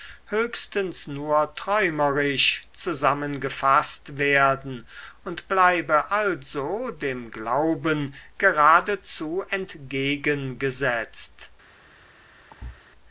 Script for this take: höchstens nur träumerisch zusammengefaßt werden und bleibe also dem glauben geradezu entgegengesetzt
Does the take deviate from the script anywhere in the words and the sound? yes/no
yes